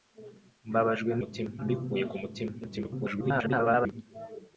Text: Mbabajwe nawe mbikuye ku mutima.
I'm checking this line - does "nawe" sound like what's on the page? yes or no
no